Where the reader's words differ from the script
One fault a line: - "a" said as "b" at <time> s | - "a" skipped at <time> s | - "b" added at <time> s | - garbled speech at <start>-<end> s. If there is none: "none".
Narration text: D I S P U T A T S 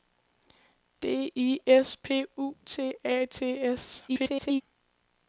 - garbled speech at 4.1-4.6 s